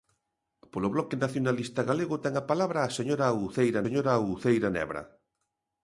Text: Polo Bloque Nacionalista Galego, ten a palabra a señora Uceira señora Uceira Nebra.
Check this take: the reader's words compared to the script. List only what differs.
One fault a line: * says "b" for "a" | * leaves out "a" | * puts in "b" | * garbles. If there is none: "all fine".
all fine